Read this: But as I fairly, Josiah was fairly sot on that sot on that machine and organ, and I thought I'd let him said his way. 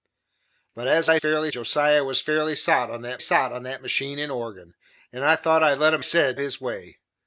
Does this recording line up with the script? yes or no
yes